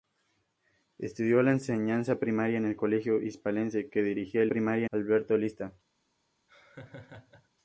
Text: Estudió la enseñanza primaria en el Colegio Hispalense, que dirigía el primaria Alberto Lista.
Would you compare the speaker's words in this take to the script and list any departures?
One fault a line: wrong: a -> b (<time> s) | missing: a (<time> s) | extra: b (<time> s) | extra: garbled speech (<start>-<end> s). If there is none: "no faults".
no faults